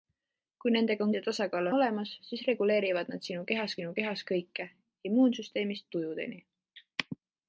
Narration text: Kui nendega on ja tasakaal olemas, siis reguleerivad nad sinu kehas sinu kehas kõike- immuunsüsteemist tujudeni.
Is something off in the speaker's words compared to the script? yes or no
no